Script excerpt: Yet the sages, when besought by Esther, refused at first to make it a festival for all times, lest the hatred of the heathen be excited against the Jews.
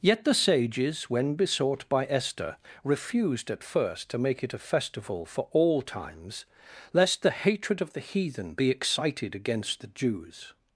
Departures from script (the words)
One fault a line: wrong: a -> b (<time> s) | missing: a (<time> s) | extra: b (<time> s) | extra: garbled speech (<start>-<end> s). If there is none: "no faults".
no faults